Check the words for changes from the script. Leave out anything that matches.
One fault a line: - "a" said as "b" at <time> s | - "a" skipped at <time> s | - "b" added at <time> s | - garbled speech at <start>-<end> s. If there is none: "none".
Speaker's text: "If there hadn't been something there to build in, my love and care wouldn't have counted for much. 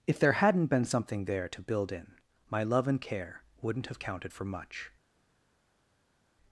none